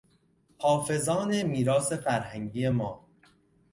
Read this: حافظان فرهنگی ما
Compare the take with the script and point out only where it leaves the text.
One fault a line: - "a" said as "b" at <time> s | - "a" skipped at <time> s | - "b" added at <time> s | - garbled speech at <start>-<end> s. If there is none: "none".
- "میراث" added at 1.4 s